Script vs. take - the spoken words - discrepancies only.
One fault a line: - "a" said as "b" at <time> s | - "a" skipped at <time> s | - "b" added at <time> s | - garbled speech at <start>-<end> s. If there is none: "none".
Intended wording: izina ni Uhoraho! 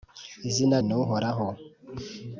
none